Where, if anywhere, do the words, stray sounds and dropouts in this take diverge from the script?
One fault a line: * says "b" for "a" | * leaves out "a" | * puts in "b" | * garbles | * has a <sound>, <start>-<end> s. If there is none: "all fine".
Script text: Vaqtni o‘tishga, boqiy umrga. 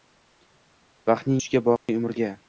* has a dropout, 1.8-1.9 s